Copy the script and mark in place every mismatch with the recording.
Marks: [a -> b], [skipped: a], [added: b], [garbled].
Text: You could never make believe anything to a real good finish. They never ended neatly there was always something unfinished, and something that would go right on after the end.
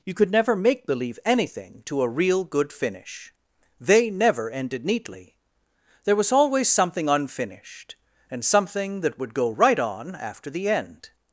You could never make believe anything to a real good finish. They never ended neatly there was always something unfinished, and something that would go right on after the end.